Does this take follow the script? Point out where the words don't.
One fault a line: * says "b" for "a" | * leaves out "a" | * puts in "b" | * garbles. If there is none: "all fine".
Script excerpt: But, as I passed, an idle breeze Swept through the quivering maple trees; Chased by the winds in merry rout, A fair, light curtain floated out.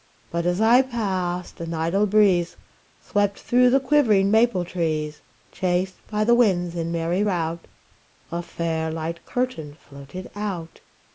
all fine